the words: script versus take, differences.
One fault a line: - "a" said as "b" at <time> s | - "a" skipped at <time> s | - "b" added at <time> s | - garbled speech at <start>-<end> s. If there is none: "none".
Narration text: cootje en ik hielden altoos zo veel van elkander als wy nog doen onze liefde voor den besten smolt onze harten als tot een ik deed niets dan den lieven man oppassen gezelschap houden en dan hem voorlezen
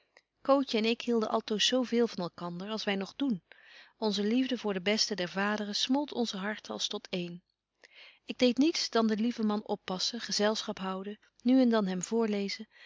- "der vaderen" added at 5.2 s
- "nu" added at 11.4 s